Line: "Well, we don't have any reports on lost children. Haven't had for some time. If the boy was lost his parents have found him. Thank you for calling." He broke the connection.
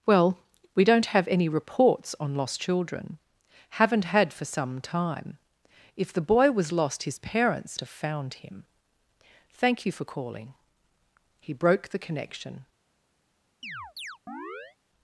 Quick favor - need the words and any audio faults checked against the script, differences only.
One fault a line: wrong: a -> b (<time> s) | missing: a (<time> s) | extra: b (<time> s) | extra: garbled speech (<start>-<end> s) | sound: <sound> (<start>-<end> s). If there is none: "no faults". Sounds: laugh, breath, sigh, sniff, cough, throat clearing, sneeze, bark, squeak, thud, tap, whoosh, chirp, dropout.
sound: chirp (13.6-14.8 s)